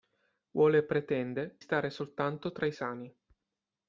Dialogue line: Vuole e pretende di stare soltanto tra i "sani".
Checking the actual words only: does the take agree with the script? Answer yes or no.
no